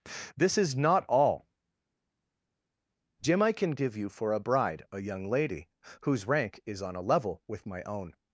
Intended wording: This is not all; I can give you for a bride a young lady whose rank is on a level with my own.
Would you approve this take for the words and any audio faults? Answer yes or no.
no